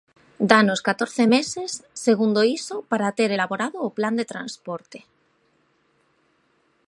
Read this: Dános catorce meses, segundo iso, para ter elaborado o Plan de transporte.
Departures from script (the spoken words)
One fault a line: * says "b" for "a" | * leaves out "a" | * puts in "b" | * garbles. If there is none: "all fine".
all fine